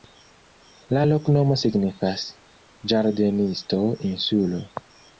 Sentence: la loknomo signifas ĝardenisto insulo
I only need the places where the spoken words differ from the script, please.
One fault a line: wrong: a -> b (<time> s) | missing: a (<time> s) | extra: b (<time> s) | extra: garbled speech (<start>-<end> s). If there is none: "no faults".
no faults